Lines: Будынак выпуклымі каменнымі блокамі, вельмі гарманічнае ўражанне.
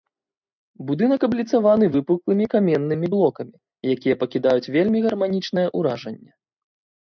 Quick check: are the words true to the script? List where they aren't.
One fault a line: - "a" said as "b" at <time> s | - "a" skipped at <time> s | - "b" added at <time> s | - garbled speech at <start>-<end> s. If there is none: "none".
- "абліцаваны" added at 1.3 s
- "якія пакідаюць" added at 4.0 s